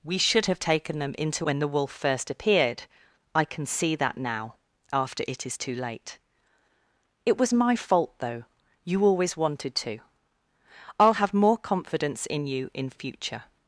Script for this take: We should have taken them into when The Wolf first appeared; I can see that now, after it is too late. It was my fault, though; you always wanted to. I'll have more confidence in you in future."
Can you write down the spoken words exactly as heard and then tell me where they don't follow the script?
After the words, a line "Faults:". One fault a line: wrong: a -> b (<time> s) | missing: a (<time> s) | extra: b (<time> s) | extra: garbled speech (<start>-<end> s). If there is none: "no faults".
We should have taken them into when The Wolf first appeared; I can see that now, after it is too late. It was my fault, though; you always wanted to. I'll have more confidence in you in future."
Faults:
no faults